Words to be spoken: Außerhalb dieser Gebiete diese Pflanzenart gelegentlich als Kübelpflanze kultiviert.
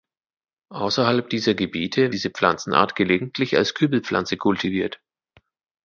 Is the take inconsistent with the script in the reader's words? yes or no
no